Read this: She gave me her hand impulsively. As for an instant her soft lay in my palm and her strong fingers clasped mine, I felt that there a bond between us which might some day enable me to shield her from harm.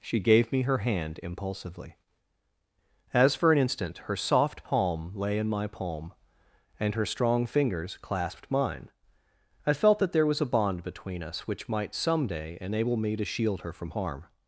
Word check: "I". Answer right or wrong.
right